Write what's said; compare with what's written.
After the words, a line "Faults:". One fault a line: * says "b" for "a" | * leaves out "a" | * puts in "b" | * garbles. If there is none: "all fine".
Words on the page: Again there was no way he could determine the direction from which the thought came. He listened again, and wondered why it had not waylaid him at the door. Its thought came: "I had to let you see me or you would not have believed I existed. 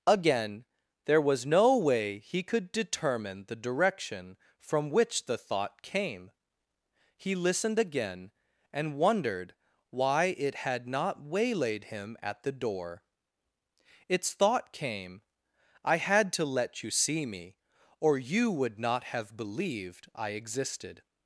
Again there was no way he could determine the direction from which the thought came. He listened again, and wondered why it had not waylaid him at the door. Its thought came: "I had to let you see me or you would not have believed I existed.
Faults:
all fine